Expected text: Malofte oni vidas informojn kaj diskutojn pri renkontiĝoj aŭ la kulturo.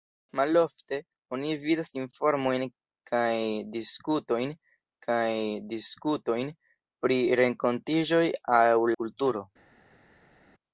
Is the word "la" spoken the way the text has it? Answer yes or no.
no